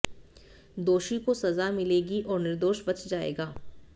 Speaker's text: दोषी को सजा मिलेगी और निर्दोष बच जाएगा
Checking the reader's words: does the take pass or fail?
pass